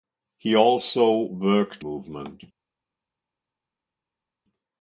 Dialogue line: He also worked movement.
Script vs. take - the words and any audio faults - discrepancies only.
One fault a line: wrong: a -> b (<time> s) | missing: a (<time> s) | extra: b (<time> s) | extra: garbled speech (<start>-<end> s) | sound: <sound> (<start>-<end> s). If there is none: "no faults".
no faults